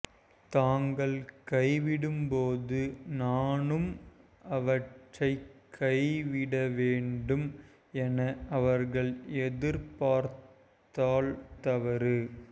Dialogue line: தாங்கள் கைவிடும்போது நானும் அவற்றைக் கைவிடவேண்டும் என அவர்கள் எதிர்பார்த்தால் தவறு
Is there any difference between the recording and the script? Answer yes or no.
no